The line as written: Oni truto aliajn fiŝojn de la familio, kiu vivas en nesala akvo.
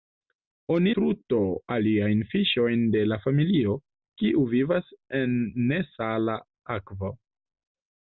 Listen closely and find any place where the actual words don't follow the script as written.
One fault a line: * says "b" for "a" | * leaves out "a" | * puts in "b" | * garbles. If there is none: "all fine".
all fine